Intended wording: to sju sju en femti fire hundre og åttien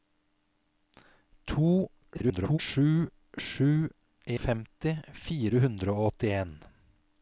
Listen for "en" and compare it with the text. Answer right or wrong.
wrong